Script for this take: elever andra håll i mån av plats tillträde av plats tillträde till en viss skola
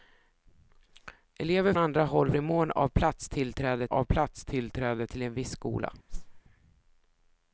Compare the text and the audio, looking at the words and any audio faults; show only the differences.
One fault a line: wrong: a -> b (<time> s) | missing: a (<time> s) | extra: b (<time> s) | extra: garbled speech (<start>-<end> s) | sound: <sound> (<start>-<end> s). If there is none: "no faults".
sound: whoosh (6.1-6.4 s)